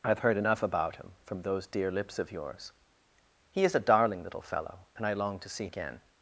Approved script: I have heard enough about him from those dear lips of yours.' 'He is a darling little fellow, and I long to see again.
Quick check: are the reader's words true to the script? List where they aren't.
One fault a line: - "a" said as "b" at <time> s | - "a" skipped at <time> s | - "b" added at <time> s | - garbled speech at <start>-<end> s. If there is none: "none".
none